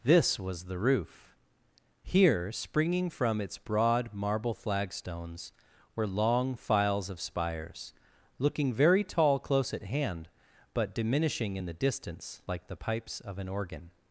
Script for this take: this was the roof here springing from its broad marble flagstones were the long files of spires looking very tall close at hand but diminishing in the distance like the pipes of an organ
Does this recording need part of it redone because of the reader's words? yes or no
yes